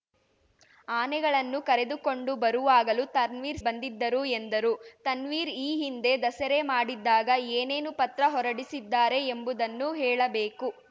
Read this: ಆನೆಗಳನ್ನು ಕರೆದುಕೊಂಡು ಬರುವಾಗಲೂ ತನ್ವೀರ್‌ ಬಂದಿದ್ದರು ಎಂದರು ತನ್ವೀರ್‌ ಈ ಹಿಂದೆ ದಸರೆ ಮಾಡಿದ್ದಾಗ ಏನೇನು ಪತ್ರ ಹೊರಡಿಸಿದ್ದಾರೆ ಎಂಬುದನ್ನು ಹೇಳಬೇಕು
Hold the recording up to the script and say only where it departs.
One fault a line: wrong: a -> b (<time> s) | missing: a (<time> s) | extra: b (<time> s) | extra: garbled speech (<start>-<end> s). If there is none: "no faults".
no faults